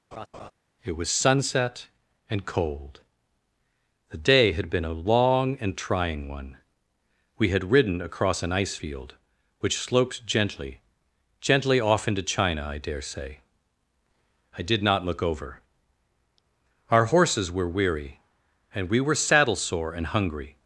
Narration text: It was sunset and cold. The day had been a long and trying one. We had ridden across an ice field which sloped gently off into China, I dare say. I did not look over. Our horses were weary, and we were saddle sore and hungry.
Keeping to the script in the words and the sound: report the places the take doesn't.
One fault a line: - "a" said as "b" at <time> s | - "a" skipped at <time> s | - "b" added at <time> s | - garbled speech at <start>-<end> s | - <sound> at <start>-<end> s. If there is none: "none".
- laugh at 0.1-0.5 s
- "gently" added at 11.4 s